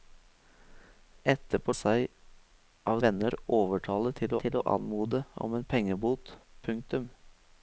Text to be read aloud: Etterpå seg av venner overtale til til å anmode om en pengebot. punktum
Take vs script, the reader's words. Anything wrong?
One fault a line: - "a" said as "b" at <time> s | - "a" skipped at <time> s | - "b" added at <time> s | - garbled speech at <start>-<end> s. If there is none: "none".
none